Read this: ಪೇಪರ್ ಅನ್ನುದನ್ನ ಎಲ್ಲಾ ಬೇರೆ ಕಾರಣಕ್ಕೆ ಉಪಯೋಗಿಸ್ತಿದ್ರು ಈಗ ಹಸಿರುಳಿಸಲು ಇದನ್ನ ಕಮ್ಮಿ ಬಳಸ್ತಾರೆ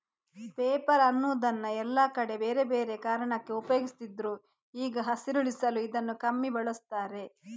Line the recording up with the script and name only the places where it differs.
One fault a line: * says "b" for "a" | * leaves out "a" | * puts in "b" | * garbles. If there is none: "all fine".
* puts in "ಕಡೆ ಬೇರೆ"